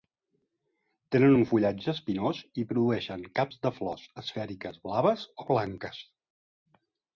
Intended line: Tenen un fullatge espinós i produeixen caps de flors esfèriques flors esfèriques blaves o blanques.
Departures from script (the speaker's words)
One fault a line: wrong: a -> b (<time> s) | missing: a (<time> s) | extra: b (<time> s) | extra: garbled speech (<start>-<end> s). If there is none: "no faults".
missing: flors esfèriques (4.8 s)